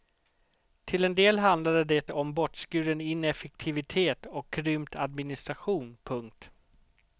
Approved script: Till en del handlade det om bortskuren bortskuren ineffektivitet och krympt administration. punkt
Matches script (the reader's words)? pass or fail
fail